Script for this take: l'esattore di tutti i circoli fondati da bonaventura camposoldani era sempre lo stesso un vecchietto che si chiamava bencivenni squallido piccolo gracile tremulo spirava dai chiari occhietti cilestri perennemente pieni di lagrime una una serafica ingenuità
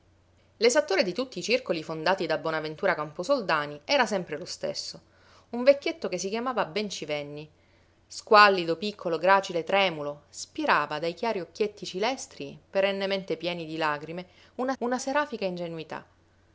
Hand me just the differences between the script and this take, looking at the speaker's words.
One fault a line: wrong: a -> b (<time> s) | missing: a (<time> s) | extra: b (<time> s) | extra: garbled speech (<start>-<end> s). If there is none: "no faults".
no faults